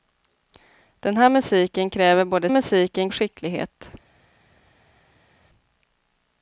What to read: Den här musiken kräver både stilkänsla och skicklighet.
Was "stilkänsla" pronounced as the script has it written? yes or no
no